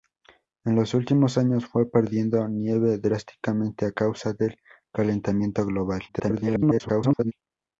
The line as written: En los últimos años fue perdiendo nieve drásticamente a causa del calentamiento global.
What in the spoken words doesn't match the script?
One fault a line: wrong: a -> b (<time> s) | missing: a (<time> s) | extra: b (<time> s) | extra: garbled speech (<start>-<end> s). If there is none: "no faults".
extra: garbled speech (6.1-7.3 s)